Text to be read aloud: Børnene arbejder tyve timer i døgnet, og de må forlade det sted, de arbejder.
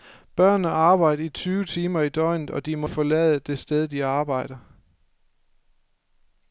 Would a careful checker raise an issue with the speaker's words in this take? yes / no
no